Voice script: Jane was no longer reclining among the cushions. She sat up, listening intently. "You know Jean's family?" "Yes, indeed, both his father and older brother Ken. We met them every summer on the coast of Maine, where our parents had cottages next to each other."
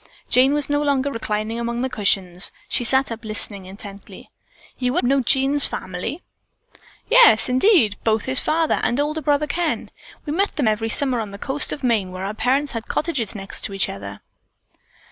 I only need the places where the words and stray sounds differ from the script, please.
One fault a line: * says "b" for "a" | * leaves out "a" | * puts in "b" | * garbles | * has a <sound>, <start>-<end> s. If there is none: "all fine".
all fine